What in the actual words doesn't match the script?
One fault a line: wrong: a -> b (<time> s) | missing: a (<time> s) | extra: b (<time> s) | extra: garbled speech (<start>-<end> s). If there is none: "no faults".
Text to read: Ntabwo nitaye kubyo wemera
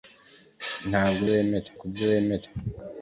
wrong: nitaye -> wemera (1.3 s)